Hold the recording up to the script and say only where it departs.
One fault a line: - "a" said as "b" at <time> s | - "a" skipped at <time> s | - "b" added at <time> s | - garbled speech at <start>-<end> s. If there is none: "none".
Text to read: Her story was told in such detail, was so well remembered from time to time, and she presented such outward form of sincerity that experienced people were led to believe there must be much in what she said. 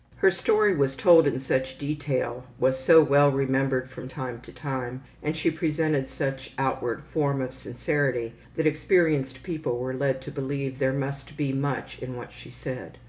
none